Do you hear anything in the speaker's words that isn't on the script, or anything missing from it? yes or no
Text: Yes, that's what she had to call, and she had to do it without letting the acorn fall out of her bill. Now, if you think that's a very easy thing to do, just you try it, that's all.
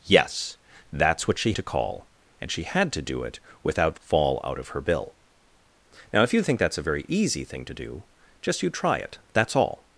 yes